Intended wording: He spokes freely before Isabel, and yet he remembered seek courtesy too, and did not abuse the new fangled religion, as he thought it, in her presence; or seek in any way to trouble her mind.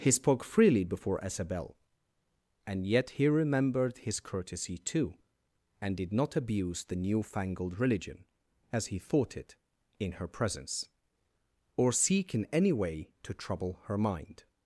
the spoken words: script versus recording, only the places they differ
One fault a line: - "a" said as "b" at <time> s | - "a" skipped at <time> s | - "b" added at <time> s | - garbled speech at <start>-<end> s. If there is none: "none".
- "spokes" said as "spoke" at 0.1 s
- "seek" said as "his" at 4.0 s